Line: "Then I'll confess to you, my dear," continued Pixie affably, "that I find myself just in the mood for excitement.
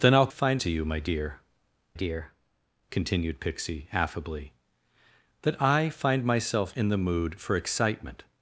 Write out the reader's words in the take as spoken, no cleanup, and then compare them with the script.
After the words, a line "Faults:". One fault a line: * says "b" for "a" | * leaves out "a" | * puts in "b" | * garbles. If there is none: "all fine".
"Then I'll find to you, my dear dear," continued Pixie affably, "that I find myself in the mood for excitement.
Faults:
* says "find" for "confess"
* puts in "dear"
* leaves out "just"